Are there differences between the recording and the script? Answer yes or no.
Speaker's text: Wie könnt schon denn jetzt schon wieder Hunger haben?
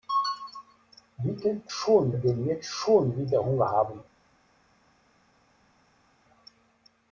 no